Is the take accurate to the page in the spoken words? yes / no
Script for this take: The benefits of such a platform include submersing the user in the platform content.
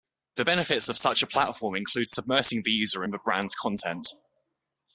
no